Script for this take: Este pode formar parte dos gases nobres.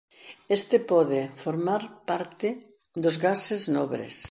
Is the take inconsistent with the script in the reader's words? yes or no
no